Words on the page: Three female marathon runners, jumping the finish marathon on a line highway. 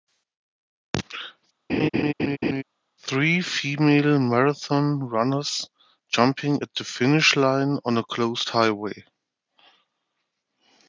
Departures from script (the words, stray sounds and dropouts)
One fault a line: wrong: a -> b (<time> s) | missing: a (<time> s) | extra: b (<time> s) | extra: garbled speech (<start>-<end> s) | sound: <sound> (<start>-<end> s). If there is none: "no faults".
sound: laugh (1.7-2.6 s)
extra: at (6.6 s)
wrong: marathon -> line (7.4 s)
wrong: line -> closed (8.0 s)